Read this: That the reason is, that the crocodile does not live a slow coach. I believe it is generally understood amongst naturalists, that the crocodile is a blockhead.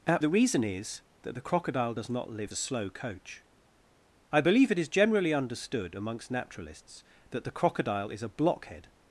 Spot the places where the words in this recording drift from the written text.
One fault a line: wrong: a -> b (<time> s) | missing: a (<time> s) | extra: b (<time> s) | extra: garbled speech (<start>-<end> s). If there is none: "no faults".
no faults